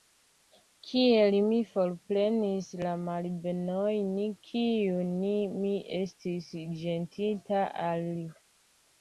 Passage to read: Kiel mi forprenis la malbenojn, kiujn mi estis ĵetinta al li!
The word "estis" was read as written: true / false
true